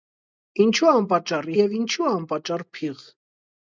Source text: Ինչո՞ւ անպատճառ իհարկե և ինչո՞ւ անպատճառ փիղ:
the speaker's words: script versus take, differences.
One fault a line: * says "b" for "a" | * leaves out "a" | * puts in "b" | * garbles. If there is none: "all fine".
* leaves out "իհարկե"